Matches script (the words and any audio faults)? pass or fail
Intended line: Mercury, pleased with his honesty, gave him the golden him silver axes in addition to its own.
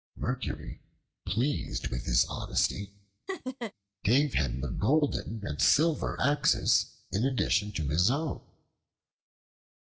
fail